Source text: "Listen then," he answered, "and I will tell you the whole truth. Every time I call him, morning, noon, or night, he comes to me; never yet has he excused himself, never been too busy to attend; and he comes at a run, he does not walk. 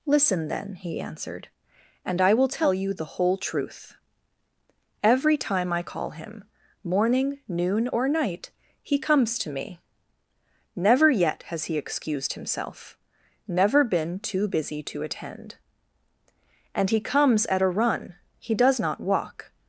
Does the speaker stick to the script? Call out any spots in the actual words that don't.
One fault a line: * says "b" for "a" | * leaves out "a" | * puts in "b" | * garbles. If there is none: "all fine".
all fine